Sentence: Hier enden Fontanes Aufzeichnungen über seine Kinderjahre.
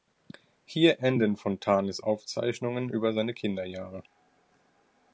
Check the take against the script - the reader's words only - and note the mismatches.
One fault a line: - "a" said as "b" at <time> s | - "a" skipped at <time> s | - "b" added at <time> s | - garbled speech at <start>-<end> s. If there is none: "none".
none